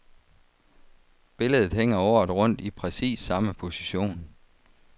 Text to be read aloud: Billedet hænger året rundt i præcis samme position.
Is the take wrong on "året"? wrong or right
right